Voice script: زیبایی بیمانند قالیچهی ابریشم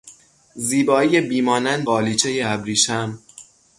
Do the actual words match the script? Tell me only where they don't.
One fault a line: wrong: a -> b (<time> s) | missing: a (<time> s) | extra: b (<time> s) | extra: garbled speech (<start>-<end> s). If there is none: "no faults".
no faults